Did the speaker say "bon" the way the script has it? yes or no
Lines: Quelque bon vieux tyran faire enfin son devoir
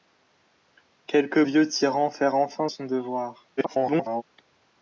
no